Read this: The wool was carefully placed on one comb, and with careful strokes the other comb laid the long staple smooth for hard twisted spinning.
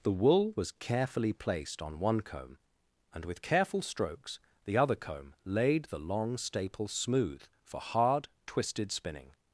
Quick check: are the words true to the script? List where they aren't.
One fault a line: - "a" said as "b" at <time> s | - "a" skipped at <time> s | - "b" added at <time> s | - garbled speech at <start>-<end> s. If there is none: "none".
none